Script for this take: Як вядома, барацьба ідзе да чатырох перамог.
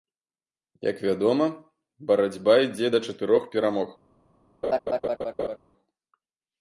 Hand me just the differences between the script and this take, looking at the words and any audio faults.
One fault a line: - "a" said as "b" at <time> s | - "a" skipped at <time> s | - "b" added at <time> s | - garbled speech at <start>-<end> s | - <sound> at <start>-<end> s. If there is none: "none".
- laugh at 4.6-5.6 s